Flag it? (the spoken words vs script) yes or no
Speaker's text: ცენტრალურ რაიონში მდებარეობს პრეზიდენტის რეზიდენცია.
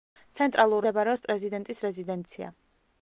yes